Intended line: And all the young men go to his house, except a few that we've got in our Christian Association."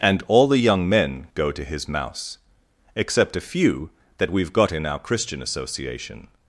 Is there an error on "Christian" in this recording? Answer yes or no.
no